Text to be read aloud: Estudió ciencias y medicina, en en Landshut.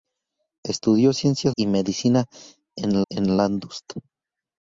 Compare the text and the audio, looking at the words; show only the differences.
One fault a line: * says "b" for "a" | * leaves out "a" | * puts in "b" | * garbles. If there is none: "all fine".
all fine